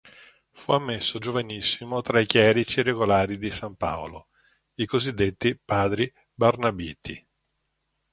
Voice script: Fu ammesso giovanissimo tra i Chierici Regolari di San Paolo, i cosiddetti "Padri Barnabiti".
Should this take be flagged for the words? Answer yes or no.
no